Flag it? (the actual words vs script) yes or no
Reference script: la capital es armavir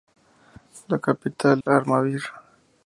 yes